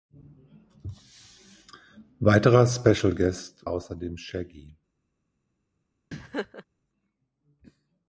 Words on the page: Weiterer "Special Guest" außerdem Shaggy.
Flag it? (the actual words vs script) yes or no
no